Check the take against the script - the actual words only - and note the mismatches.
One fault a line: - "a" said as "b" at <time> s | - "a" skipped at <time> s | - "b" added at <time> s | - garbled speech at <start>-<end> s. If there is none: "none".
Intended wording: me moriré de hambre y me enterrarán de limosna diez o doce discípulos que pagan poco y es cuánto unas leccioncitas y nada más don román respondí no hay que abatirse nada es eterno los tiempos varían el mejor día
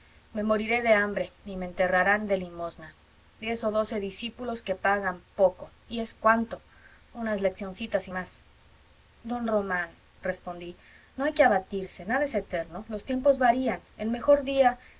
- "nada" skipped at 8.1 s